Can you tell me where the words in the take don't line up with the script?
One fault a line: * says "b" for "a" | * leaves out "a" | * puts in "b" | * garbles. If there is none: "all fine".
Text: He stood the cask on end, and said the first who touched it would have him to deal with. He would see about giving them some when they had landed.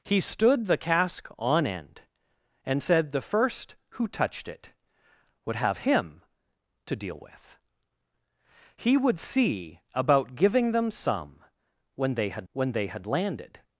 * puts in "when they had"